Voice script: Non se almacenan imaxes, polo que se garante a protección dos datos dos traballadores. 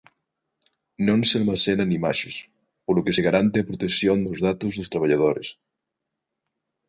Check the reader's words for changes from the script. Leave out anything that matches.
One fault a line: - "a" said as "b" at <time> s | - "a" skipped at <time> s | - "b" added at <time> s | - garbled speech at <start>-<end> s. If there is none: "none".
none